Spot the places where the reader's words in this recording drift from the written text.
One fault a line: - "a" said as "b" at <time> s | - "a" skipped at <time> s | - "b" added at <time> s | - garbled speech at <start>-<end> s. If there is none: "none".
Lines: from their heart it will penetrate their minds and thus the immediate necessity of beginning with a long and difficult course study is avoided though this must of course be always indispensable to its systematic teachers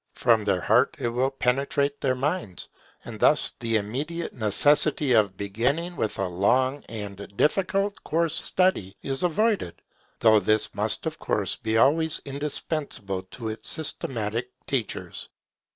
none